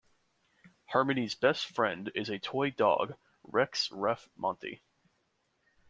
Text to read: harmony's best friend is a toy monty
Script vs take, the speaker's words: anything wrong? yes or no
yes